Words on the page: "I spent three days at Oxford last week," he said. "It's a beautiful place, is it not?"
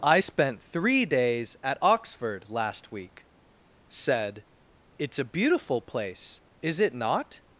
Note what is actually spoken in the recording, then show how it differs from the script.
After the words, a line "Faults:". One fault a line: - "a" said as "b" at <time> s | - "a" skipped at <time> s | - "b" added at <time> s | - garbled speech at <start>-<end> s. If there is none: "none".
"I spent three days at Oxford last week," said. "It's a beautiful place, is it not?"
Faults:
- "he" skipped at 3.3 s